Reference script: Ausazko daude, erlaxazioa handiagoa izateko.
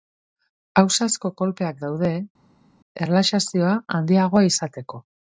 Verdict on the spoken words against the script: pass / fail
fail